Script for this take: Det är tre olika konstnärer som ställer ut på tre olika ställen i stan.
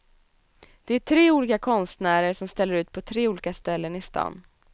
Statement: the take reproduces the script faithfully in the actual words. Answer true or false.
true